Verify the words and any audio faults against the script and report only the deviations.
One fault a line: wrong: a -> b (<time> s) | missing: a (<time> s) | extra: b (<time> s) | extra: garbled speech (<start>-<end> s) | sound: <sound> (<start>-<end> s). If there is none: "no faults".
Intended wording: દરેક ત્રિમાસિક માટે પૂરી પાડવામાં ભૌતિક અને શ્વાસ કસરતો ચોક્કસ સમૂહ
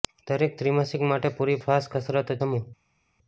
missing: પાડવામાં ભૌતિક અને (1.6 s)
missing: ચોક્કસ (2.4 s)